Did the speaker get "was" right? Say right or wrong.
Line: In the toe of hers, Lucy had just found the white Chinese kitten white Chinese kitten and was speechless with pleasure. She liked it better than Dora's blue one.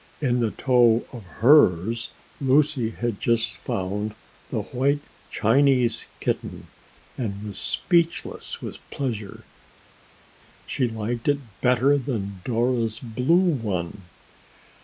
right